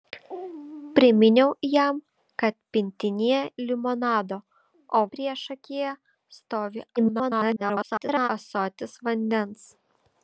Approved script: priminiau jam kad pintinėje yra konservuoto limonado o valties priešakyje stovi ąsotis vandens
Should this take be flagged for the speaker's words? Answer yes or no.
yes